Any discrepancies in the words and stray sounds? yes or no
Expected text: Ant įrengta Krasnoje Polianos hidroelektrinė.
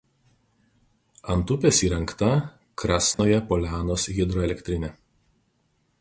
yes